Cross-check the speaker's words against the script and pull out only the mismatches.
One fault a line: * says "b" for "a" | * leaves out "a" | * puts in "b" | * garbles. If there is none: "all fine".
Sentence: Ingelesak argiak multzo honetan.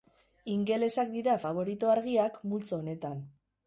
* puts in "dira faborito"